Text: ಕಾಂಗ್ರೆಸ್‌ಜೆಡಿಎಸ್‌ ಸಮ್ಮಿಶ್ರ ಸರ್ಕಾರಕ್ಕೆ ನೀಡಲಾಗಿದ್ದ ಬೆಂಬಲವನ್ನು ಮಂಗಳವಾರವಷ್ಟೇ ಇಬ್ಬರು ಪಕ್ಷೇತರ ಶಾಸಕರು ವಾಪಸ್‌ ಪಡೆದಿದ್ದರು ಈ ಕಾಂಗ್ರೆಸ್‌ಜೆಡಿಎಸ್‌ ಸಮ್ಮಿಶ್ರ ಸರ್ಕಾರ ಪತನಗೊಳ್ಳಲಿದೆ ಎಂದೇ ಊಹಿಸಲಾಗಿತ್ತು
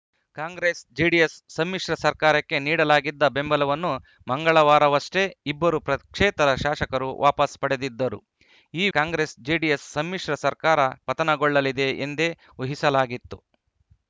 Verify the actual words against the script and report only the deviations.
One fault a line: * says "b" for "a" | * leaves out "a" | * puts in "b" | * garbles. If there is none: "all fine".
all fine